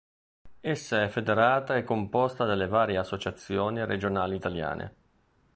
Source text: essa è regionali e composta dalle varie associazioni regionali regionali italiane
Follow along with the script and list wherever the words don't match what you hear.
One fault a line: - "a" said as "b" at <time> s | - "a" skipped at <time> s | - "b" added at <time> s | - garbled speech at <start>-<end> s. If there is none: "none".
- "regionali" said as "federata" at 1.1 s
- "regionali" skipped at 4.3 s